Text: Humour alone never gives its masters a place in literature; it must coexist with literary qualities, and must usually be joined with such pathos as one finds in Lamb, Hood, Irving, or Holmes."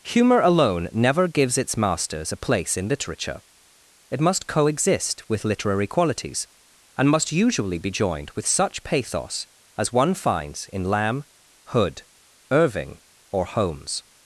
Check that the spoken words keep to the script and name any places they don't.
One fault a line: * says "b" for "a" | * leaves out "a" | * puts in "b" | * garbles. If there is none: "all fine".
all fine